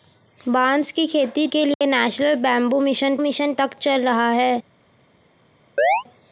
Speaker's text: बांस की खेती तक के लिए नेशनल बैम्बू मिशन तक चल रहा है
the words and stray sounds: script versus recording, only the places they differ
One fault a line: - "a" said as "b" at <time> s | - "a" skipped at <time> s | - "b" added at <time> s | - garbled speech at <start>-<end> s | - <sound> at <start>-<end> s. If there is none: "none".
- "तक" skipped at 1.5 s
- dropout at 1.7-1.8 s
- "मिशन" added at 3.2 s
- chirp at 5.8-6.0 s